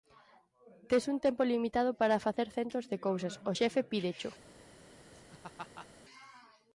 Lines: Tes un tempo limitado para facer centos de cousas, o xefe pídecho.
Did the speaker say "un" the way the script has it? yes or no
yes